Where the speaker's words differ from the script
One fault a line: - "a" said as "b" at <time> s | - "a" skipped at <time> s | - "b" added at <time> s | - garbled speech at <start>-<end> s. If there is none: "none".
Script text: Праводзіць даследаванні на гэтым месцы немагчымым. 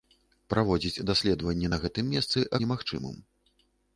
none